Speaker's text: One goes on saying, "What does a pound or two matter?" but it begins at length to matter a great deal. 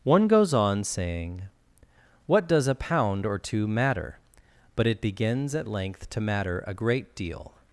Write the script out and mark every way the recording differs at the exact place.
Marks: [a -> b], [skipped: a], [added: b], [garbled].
One goes on saying, "What does a pound or two matter?" but it begins at length to matter a great deal.